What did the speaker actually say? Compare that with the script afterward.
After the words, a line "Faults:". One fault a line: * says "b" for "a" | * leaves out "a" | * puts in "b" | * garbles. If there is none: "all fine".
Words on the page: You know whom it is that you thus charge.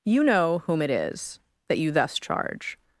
You know whom it is that you thus charge.
Faults:
all fine